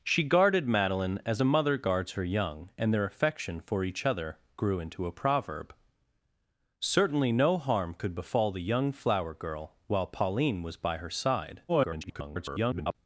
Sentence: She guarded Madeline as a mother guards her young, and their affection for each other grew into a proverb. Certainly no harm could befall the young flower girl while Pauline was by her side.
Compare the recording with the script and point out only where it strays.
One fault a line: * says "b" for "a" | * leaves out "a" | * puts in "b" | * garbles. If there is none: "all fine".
* garbles